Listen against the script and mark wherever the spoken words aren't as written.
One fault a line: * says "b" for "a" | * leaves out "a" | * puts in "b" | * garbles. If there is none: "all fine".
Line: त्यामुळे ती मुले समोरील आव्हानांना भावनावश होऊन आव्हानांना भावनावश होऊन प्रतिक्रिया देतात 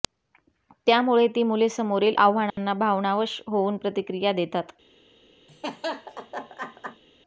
* leaves out "आव्हानांना भावनावश होऊन"